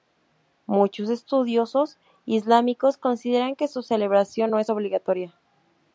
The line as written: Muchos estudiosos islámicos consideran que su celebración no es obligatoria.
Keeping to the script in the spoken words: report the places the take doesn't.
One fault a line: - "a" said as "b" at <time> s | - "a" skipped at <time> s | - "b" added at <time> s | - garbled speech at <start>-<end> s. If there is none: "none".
none